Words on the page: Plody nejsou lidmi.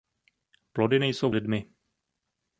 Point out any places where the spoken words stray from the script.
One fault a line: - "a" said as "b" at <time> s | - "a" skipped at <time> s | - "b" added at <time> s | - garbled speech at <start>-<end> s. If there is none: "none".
none